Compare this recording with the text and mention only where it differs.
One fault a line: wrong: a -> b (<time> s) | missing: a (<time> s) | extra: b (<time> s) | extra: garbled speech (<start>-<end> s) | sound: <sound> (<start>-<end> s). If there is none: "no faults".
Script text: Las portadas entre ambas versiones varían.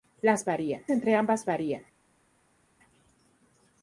wrong: portadas -> varían (0.4 s)
missing: versiones (1.5 s)